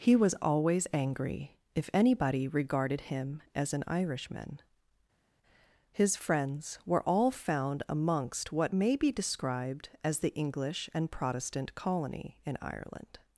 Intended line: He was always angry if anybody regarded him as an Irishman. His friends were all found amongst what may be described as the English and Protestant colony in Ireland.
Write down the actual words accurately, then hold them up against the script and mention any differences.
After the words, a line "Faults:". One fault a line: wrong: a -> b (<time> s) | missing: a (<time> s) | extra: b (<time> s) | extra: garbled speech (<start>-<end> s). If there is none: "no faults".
He was always angry if anybody regarded him as an Irishman. His friends were all found amongst what may be described as the English and Protestant colony in Ireland.
Faults:
no faults